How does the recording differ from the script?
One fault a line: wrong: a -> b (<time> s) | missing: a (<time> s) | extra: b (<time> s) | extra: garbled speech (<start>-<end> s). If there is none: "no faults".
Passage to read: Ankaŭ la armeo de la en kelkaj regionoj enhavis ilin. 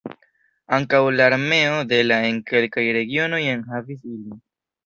no faults